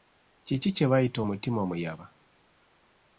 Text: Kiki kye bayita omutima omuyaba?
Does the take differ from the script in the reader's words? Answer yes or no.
no